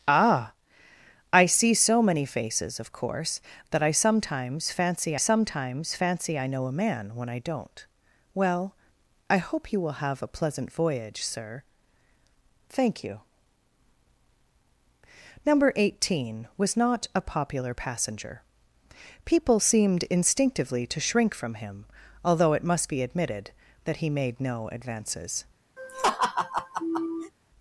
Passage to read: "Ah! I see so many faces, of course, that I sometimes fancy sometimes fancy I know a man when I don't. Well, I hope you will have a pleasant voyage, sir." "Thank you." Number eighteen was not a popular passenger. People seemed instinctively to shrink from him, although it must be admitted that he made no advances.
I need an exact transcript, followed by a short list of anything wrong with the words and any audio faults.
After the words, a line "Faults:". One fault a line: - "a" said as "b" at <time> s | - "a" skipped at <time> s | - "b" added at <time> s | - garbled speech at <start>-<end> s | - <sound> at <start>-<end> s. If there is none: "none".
"Ah! I see so many faces, of course, that I sometimes fancy sometimes fancy I know a man when I don't. Well, I hope you will have a pleasant voyage, sir." "Thank you." Number eighteen was not a popular passenger. People seemed instinctively to shrink from him, although it must be admitted that he made no advances.
Faults:
- laugh at 25.8-27.3 s